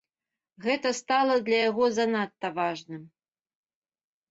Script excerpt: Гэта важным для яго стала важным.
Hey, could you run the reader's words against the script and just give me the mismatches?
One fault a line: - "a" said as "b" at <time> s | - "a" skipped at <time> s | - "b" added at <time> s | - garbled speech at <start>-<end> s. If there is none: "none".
- "важным" said as "стала" at 1.0 s
- "стала" said as "занадта" at 2.0 s